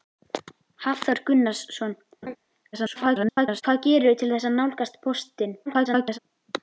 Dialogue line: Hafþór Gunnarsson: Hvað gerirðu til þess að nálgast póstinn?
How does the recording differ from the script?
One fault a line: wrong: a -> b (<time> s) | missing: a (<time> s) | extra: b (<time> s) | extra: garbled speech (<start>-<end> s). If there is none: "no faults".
extra: garbled speech (2.7-3.6 s)
extra: garbled speech (5.7-6.2 s)